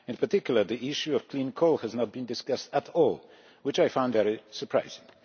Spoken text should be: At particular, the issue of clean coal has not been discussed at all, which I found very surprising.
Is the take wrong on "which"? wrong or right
right